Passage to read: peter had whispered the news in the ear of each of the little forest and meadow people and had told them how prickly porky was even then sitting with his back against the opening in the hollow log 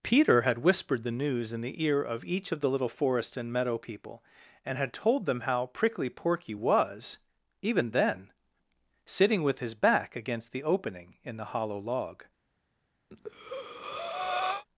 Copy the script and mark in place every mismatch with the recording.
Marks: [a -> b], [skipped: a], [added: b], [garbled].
peter had whispered the news in the ear of each of the little forest and meadow people and had told them how prickly porky was even then sitting with his back against the opening in the hollow log